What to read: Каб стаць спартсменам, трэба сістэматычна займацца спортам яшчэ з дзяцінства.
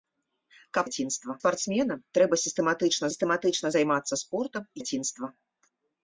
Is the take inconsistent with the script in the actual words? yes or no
yes